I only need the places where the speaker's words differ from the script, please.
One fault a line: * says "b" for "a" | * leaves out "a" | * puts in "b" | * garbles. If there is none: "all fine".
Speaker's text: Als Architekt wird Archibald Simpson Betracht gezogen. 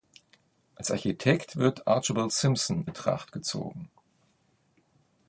all fine